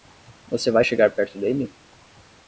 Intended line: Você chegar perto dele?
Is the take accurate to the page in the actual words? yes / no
no